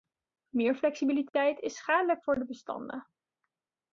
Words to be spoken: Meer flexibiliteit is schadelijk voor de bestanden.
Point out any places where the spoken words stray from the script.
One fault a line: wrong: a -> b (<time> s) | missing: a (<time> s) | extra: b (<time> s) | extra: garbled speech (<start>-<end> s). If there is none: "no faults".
no faults